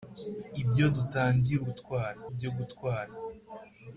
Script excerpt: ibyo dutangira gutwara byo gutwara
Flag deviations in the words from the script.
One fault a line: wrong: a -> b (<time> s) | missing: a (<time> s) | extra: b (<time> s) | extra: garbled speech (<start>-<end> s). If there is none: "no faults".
no faults